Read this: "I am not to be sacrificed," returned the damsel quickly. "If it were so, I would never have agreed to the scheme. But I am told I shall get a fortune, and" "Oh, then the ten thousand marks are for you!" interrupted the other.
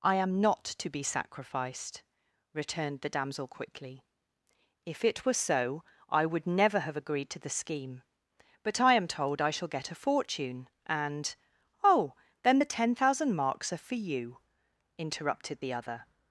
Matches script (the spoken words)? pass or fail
pass